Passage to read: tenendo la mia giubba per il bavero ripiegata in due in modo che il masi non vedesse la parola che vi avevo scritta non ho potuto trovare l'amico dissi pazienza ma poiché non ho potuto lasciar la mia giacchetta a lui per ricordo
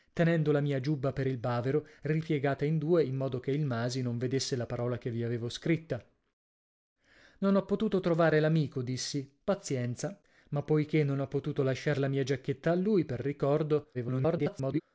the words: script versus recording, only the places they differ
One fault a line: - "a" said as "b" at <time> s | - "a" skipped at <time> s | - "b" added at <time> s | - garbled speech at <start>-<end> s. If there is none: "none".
- garbled speech at 13.9-14.8 s